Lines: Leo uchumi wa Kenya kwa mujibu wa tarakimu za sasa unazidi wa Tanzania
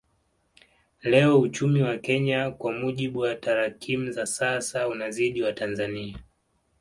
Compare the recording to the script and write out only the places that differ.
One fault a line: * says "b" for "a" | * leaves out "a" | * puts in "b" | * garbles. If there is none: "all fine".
all fine